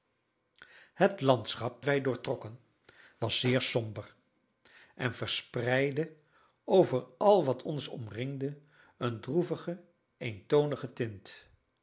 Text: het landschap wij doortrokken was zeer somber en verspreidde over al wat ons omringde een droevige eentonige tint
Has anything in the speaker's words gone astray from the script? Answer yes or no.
no